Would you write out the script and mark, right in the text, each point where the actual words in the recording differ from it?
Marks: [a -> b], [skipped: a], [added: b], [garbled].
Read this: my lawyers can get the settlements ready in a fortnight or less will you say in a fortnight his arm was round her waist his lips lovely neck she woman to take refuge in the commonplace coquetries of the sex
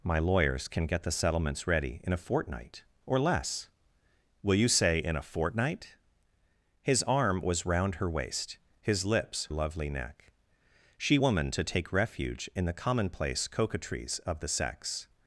my lawyers can get the settlements ready in a fortnight or less will you say in a fortnight his arm was round her waist his lips lovely neck she woman to take refuge in the commonplace coquetries of the sex